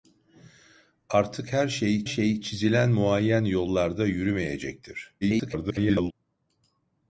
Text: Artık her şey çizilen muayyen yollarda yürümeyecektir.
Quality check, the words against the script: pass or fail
fail